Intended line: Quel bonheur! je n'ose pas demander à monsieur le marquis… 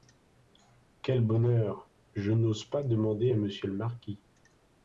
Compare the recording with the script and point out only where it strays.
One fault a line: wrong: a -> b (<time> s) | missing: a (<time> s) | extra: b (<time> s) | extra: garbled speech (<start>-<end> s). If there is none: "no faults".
no faults